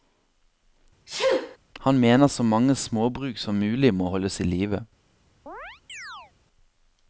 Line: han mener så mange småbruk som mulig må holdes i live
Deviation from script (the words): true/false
false